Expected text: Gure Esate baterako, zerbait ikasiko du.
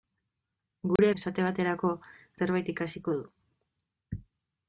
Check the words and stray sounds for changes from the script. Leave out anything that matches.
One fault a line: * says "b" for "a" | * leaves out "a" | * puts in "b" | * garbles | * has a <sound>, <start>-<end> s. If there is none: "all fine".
* has a dropout, 1.0-1.0 s